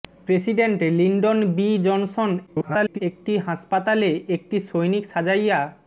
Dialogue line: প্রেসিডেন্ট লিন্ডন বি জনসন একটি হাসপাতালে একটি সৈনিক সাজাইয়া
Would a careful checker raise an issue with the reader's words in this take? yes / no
yes